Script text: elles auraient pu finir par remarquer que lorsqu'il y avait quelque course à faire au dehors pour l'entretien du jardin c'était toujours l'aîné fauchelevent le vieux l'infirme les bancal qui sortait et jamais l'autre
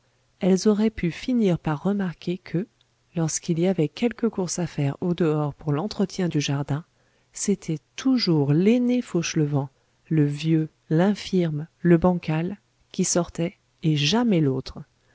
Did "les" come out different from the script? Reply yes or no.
yes